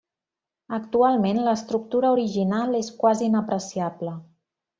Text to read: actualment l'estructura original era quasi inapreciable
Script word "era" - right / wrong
wrong